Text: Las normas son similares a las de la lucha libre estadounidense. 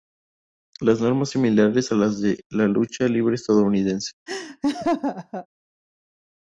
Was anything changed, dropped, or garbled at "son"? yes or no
yes